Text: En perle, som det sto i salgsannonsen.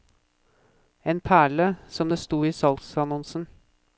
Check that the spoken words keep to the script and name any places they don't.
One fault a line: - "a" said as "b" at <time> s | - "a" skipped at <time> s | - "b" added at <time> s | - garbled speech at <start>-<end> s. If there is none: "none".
none